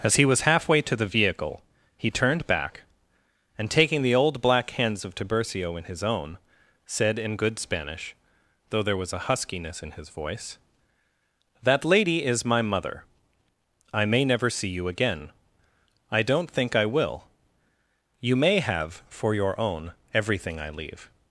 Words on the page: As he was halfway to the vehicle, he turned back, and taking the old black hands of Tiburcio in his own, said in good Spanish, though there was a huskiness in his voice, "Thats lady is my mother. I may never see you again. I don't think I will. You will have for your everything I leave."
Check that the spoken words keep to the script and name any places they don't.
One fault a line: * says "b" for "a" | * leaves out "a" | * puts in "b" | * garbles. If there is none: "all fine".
* says "That" for "Thats"
* says "may" for "will"
* puts in "own"